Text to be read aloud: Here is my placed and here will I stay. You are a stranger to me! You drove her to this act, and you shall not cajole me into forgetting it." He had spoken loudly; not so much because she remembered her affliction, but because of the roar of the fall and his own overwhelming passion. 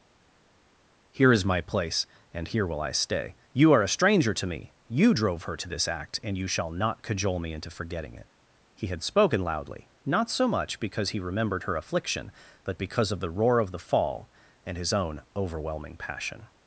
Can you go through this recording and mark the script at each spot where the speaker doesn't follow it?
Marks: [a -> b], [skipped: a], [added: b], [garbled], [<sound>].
Here is my [placed -> place] and here will I stay. You are a stranger to me! You drove her to this act, and you shall not cajole me into forgetting it." He had spoken loudly; not so much because [she -> he] remembered her affliction, but because of the roar of the fall and his own overwhelming passion.